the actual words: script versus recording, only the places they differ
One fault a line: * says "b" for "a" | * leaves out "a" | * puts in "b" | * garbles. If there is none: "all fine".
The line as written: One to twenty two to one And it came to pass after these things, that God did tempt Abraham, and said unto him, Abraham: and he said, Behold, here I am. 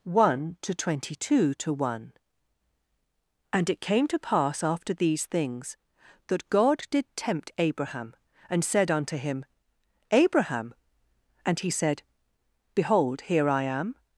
all fine